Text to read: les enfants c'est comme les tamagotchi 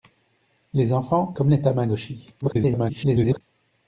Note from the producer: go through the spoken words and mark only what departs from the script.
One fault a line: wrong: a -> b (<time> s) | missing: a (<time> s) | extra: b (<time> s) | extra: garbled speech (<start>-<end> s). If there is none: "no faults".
missing: c'est (1.4 s)
extra: garbled speech (2.4-3.4 s)